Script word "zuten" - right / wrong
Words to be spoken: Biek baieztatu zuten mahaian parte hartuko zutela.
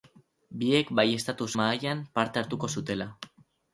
wrong